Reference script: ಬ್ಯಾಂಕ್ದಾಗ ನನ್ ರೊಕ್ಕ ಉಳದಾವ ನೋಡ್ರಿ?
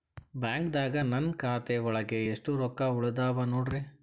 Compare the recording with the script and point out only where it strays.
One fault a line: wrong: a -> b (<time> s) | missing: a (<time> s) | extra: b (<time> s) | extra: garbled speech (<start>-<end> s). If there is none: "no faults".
extra: ಖಾತೆ ಒಳಗೆ ಎಷ್ಟ್ (1.3 s)